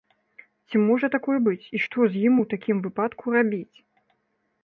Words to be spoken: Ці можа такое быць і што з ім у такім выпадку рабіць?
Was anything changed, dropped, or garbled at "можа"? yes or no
no